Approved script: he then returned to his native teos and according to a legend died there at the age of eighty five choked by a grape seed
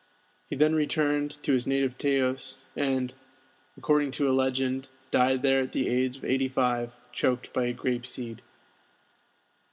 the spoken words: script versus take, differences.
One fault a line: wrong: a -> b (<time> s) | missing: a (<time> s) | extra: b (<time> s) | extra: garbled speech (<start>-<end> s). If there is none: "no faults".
no faults